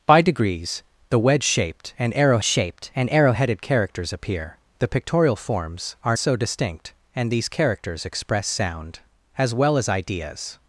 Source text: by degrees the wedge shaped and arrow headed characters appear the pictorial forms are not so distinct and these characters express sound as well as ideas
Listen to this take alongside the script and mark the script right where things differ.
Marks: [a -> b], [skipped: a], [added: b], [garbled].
by degrees the wedge shaped and arrow [added: shaped and arrow] headed characters appear the pictorial forms are [skipped: not] so distinct and these characters express sound as well as ideas